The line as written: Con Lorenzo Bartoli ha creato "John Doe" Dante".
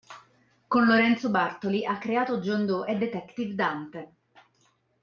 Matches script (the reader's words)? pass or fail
fail